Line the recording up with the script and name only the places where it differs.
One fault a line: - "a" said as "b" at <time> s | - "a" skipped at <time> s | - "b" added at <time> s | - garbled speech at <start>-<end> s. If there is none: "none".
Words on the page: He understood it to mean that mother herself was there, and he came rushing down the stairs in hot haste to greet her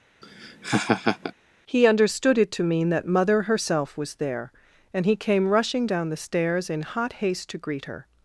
none